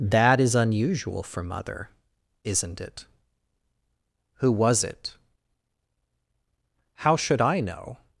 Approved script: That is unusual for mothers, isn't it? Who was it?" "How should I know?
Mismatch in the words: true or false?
true